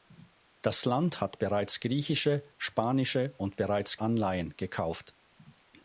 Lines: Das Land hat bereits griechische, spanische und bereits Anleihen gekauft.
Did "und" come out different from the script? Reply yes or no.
no